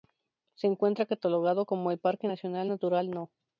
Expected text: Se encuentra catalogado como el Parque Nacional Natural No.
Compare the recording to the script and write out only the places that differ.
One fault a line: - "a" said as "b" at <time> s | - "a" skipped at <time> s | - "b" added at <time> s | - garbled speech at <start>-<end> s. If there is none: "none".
none